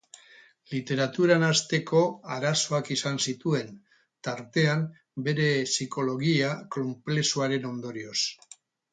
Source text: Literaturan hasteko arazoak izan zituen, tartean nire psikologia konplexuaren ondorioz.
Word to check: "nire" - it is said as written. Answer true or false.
false